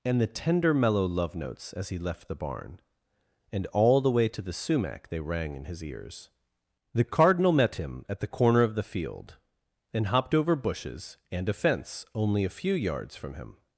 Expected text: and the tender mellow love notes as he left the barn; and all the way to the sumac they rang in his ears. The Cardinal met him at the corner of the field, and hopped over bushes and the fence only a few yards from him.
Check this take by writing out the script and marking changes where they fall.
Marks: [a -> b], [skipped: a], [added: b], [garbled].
and the tender mellow love notes as he left the barn; and all the way to the sumac they rang in his ears. The Cardinal met him at the corner of the field, and hopped over bushes and [the -> a] fence only a few yards from him.